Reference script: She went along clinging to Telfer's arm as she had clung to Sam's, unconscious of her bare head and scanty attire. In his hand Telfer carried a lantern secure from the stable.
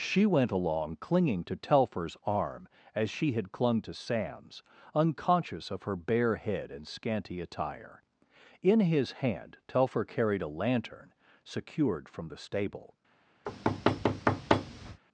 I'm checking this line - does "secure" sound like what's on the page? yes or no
no